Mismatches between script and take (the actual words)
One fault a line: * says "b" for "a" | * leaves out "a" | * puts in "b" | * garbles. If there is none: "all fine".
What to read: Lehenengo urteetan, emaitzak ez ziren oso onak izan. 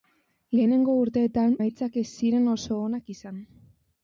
all fine